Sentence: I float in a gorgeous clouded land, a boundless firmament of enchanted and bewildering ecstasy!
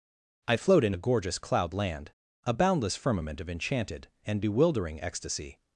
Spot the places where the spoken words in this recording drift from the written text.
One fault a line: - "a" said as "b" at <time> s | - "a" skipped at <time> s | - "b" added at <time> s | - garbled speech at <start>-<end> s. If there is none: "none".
- "clouded" said as "cloud" at 1.4 s